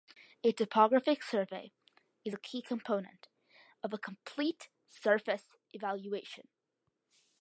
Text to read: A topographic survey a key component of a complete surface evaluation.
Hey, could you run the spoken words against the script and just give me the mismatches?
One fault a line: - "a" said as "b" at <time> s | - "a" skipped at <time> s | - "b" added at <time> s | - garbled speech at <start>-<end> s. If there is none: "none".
- "is" added at 2.2 s